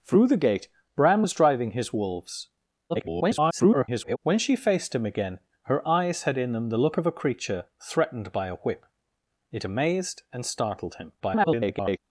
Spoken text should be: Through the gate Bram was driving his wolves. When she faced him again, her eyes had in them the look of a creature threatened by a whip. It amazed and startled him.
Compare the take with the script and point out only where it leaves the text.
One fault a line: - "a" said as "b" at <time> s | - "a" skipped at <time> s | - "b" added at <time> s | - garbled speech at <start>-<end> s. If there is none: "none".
- garbled speech at 2.9-4.2 s
- garbled speech at 11.2-12.0 s